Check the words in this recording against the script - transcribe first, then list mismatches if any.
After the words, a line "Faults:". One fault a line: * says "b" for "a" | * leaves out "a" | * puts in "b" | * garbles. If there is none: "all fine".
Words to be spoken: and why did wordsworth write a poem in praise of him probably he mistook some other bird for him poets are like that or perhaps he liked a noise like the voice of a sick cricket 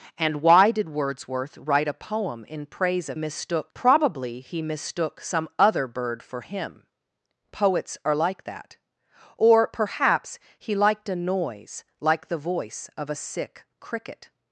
and why did wordsworth write a poem in praise of mistook probably he mistook some other bird for him poets are like that or perhaps he liked a noise like the voice of a sick cricket
Faults:
* says "mistook" for "him"